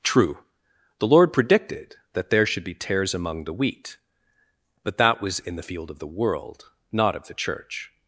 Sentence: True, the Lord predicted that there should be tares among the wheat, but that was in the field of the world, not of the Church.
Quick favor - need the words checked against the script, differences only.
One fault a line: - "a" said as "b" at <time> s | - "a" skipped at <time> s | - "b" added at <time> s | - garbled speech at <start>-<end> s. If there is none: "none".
none